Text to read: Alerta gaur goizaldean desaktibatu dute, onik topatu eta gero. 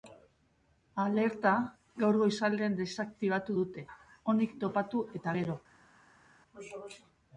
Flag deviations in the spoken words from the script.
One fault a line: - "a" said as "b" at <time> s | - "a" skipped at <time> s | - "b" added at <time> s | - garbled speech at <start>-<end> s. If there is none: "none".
none